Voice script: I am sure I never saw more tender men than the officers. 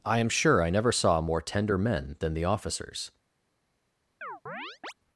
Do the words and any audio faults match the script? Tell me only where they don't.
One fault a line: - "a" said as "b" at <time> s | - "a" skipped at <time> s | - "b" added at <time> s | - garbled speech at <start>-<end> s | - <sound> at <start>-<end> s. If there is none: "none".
- chirp at 4.2-4.9 s